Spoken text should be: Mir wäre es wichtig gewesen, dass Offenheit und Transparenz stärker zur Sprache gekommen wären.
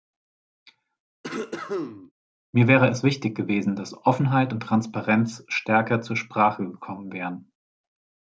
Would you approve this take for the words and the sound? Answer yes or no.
no